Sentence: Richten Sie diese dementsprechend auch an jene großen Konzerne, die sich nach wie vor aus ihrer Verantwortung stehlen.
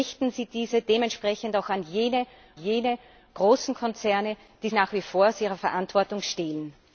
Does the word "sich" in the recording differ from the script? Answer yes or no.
yes